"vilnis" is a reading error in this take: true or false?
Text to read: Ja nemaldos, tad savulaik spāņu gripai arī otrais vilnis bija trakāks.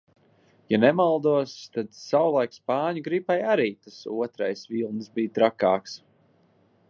false